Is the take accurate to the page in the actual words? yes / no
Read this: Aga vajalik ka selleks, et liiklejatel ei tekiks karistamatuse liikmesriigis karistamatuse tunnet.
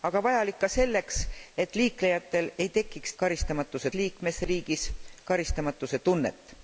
yes